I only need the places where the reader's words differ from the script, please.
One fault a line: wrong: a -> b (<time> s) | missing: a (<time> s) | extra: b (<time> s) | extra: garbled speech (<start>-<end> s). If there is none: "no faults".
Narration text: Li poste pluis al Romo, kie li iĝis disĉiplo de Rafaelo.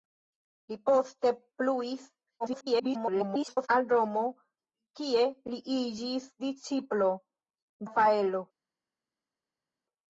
extra: garbled speech (2.4-3.7 s)
missing: de (7.1 s)